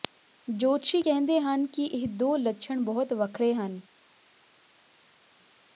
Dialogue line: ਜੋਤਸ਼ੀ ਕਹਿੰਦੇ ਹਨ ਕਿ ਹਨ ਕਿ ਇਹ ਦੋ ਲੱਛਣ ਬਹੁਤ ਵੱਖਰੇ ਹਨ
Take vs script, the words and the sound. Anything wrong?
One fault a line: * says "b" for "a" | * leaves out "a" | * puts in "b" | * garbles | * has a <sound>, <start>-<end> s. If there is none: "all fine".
* leaves out "ਹਨ ਕਿ"